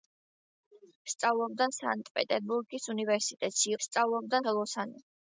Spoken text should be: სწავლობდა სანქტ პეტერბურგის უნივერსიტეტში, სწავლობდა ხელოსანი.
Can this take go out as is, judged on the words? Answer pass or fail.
pass